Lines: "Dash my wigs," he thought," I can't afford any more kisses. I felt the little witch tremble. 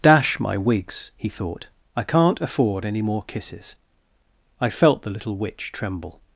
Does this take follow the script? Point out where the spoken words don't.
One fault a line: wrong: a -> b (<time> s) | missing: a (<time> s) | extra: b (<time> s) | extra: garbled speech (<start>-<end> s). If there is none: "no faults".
no faults